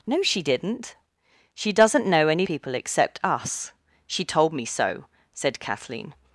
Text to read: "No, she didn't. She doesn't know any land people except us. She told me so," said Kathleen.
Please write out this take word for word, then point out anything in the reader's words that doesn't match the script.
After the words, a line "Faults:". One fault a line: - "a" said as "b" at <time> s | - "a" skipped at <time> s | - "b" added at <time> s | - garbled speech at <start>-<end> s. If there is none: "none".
"No, she didn't. She doesn't know any people except us. She told me so," said Kathleen.
Faults:
- "land" skipped at 2.5 s